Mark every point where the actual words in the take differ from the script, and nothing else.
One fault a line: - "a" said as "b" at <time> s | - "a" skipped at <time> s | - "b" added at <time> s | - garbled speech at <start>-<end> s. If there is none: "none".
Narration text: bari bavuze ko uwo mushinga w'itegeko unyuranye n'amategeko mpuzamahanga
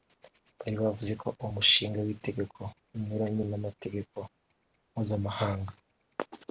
none